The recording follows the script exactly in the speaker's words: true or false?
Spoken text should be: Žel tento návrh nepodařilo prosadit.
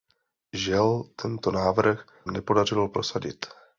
true